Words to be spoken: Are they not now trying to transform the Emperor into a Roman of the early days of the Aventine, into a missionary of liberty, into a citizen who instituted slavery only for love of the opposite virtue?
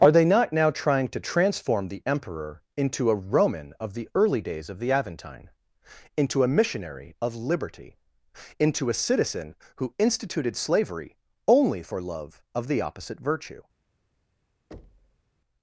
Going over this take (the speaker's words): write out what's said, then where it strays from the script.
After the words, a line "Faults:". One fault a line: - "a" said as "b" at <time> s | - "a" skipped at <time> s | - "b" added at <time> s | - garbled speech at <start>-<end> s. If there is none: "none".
Are they not now trying to transform the Emperor into a Roman of the early days of the Aventine, into a missionary of liberty, into a citizen who instituted slavery only for love of the opposite virtue?
Faults:
none